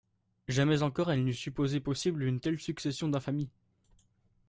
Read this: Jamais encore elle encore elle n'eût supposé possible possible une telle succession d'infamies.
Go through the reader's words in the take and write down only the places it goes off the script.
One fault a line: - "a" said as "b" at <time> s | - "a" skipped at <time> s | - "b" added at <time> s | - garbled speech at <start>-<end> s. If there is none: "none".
- "encore elle" skipped at 1.2 s
- "possible" skipped at 2.2 s